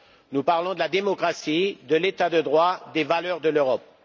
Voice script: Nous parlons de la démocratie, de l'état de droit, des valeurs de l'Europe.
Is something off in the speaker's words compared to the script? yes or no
no